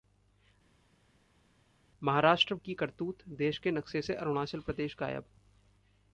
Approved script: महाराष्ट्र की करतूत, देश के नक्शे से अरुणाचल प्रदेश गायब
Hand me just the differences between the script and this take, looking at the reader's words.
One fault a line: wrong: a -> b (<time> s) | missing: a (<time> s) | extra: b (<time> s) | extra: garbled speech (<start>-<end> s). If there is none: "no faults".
no faults